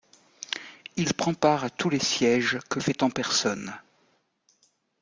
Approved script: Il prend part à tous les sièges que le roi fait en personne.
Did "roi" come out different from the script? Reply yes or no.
yes